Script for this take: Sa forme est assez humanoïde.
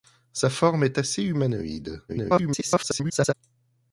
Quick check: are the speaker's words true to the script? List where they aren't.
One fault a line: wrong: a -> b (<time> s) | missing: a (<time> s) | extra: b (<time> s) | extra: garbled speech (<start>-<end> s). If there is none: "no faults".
extra: garbled speech (2.1-3.3 s)